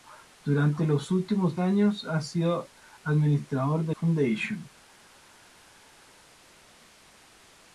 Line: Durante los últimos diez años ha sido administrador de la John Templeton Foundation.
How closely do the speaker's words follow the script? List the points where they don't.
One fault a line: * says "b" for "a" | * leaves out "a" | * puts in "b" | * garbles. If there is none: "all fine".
* leaves out "diez"
* leaves out "la John Templeton"